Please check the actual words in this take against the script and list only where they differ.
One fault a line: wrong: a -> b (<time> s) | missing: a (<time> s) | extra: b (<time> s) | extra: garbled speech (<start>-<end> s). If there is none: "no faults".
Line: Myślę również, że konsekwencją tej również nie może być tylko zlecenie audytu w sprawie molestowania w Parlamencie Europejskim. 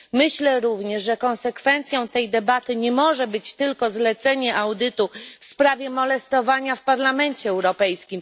wrong: również -> debaty (2.3 s)